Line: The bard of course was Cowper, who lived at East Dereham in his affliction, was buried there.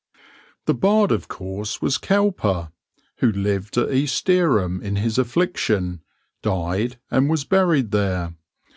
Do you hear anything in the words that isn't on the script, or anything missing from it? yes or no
yes